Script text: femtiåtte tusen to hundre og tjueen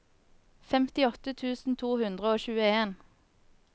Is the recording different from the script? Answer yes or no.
no